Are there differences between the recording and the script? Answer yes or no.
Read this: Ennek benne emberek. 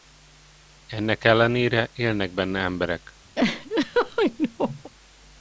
yes